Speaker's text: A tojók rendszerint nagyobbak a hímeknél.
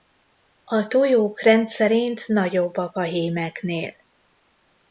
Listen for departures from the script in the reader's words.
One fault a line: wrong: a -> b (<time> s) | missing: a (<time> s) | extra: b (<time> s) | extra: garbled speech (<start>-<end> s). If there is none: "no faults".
no faults